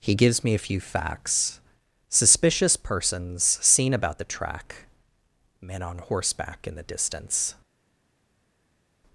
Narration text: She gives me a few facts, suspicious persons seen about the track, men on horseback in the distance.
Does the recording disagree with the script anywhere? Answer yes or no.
yes